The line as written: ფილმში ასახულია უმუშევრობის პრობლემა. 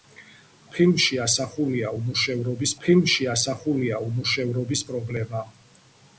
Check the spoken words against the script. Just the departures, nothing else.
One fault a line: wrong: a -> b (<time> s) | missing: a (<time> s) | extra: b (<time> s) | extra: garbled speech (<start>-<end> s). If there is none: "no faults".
extra: ფილმში ასახულია უმუშევრობის (2.9 s)